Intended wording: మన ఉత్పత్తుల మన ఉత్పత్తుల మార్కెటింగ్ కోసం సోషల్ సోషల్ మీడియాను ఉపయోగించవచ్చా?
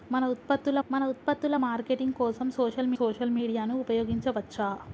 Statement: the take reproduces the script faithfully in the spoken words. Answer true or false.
true